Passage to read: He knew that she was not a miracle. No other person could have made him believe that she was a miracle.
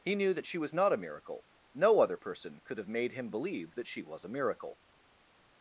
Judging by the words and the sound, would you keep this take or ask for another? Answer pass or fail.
pass